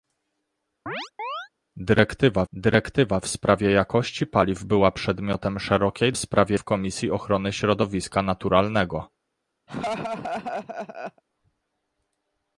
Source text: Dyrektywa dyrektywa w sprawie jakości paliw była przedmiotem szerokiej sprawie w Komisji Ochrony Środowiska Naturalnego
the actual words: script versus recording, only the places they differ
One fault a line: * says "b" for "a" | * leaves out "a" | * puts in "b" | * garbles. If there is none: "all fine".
all fine